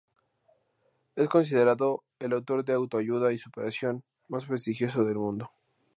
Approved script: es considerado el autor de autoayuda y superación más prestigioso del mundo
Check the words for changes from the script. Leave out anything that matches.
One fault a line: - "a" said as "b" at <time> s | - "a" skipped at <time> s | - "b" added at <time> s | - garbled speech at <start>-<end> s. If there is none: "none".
none